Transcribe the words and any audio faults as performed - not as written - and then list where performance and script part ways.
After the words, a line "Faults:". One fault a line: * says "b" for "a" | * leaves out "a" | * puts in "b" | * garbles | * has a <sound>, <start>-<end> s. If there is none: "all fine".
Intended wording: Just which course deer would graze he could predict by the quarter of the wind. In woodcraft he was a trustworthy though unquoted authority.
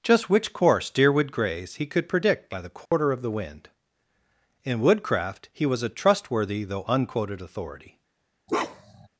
Just which course deer would graze he could predict by the quarter of the wind. In woodcraft he was a trustworthy though unquoted authority.
Faults:
* has a dropout, 2.9-2.9 s
* has a bark, 8.5-9.1 s